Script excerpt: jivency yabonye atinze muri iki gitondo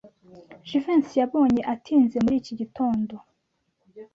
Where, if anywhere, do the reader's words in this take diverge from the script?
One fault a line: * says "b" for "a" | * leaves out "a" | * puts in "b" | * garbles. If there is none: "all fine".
all fine